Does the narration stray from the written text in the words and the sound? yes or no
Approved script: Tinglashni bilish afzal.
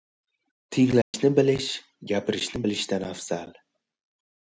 yes